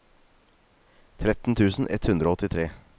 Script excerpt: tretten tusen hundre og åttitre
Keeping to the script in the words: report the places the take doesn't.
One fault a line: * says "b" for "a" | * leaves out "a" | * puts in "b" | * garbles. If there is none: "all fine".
* puts in "ett"